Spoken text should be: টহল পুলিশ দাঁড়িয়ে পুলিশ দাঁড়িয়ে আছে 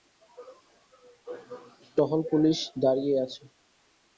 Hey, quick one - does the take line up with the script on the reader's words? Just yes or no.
no